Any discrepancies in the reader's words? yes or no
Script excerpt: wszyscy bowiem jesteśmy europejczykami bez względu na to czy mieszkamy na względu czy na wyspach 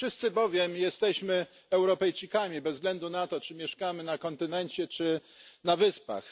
yes